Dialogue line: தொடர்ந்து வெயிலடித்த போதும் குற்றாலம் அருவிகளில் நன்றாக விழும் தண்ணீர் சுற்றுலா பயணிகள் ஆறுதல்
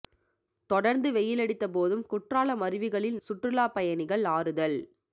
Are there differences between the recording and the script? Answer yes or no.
yes